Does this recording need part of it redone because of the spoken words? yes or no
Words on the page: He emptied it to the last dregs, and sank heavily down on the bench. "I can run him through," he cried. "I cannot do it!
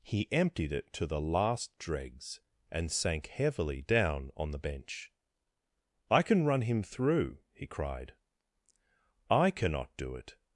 no